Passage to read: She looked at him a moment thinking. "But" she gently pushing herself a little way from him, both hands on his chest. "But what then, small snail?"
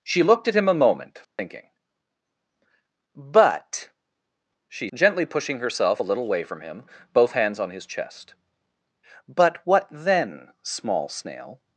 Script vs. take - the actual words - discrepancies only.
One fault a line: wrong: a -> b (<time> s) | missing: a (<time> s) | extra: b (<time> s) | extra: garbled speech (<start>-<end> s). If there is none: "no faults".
no faults